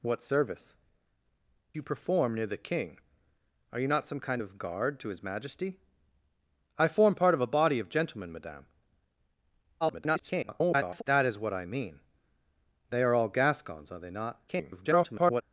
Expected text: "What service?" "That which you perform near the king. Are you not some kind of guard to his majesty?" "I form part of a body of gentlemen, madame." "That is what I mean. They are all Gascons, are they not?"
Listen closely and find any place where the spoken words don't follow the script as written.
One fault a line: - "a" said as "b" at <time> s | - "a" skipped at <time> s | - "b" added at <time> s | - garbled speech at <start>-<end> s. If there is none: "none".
- "That which" skipped at 0.8 s
- garbled speech at 9.8-11.0 s
- garbled speech at 14.5-15.4 s